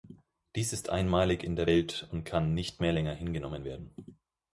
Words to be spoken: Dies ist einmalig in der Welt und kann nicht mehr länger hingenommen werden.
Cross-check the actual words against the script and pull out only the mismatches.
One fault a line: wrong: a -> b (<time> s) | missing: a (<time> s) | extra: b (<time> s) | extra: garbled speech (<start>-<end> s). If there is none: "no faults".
no faults